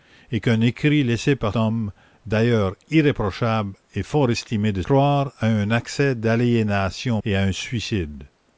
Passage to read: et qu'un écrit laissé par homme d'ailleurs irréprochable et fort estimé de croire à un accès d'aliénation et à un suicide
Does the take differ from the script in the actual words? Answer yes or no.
no